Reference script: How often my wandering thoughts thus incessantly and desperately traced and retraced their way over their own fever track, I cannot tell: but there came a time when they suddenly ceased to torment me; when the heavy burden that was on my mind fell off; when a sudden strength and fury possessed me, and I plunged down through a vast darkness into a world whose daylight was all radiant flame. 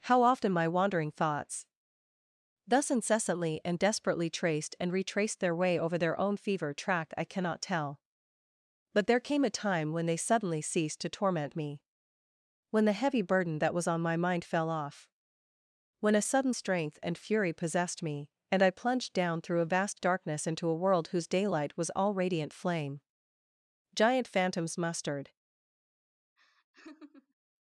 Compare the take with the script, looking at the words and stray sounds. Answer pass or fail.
fail